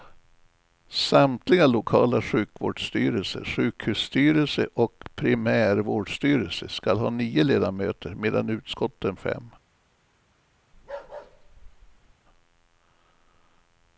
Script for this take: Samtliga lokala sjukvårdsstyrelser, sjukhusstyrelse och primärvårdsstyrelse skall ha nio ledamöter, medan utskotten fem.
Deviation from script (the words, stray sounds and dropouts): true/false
true